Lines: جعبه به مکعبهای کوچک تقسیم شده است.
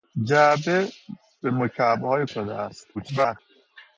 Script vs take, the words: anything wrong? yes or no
yes